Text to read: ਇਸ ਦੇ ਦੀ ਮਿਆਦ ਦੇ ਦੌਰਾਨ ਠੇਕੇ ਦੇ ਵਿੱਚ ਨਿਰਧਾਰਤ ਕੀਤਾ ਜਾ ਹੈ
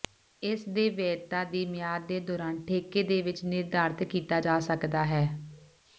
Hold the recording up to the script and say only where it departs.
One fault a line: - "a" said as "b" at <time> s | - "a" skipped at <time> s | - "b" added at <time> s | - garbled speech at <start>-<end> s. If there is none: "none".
- "ਵੈਧਤਾ" added at 0.9 s
- "ਸਕਦਾ" added at 4.6 s